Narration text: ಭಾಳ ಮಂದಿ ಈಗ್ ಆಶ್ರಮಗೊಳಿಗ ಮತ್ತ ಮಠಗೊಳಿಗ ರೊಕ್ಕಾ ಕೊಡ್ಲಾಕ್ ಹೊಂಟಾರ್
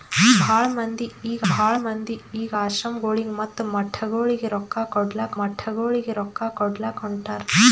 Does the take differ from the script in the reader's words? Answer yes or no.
yes